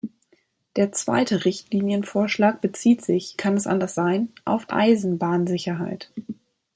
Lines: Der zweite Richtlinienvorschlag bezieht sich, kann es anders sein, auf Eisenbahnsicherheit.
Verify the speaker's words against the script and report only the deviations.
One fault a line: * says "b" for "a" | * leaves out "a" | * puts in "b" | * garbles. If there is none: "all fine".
all fine